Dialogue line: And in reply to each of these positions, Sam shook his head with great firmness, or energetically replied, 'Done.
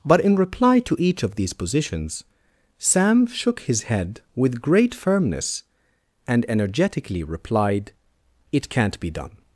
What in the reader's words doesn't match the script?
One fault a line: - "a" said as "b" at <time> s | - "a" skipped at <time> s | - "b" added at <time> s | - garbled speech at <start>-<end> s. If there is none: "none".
- "And" said as "But" at 0.0 s
- "or" said as "and" at 6.3 s
- "It can't be" added at 8.5 s